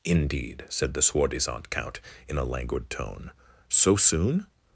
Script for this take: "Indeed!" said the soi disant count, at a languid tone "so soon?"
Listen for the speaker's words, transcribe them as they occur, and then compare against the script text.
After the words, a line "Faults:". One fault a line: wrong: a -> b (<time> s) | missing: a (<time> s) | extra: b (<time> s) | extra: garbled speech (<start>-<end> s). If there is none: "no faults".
"Indeed!" said the soi disant count, in a languid tone "so soon?"
Faults:
wrong: at -> in (2.3 s)